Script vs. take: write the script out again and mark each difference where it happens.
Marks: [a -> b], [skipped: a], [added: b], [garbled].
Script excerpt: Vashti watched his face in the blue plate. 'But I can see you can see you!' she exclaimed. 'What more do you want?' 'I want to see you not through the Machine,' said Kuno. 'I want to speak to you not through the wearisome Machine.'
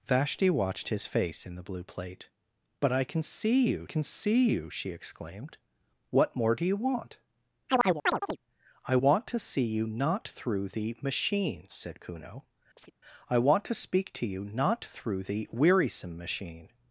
Vashti watched his face in the blue plate. 'But I can see you can see you!' she exclaimed. 'What more do you want?' 'I want to see you not through the Machine,' said Kuno. 'I want to speak to you not through the wearisome Machine.'